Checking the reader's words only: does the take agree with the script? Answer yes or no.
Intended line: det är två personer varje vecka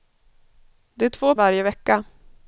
no